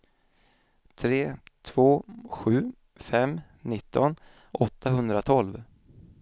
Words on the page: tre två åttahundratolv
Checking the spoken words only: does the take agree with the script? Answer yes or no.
no